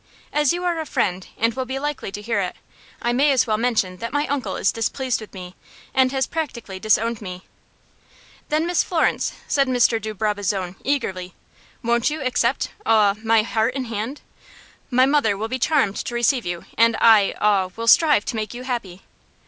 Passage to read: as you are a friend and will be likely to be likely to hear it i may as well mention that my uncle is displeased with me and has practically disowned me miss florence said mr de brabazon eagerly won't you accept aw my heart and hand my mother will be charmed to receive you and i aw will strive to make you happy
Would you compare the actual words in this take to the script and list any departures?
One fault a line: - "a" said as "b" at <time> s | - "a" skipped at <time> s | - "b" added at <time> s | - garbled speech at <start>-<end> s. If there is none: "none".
- "be likely to" skipped at 2.2 s
- "then" added at 8.5 s